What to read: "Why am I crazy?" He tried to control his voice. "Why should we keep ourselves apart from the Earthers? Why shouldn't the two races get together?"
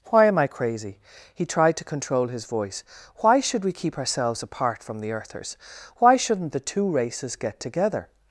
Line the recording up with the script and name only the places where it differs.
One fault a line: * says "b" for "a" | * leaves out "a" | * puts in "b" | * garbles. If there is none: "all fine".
all fine